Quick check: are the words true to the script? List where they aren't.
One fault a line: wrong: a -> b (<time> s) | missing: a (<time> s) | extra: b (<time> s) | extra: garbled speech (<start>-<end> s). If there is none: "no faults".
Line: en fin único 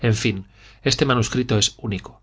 extra: este manuscrito es (0.8 s)